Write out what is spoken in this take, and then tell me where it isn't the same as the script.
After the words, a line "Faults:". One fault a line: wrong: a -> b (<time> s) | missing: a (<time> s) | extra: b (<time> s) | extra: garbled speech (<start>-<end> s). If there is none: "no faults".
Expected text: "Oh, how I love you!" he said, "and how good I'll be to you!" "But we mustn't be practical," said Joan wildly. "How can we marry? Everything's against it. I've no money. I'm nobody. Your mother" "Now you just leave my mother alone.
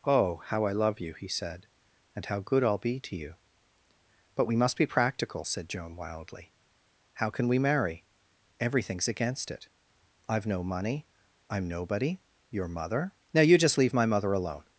"Oh, how I love you!" he said, "and how good I'll be to you!" "But we must be practical," said Joan wildly. "How can we marry? Everything's against it. I've no money. I'm nobody. Your mother" "Now you just leave my mother alone.
Faults:
wrong: mustn't -> must (4.5 s)